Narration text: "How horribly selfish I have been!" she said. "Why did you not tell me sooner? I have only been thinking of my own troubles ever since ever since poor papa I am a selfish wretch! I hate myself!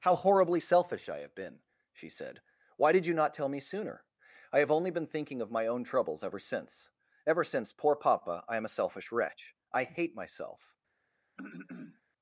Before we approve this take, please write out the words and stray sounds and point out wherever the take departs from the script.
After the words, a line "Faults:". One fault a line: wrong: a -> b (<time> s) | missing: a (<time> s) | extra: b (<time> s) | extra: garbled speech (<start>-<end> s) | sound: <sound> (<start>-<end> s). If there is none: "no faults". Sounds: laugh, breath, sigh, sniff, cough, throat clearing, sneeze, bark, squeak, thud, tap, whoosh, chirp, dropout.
"How horribly selfish I have been!" she said. "Why did you not tell me sooner? I have only been thinking of my own troubles ever since ever since poor papa I am a selfish wretch! I hate myself!
Faults:
sound: throat clearing (11.4-12.0 s)